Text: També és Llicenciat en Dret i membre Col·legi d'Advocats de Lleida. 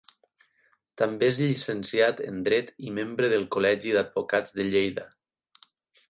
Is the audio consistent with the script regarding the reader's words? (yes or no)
no